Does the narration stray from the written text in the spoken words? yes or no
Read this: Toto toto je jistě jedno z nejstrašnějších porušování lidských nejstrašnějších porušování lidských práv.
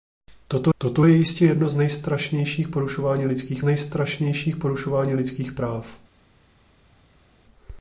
no